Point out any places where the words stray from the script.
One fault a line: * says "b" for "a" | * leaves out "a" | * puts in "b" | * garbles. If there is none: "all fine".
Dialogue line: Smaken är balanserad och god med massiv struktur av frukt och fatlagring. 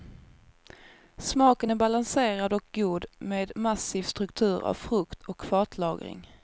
all fine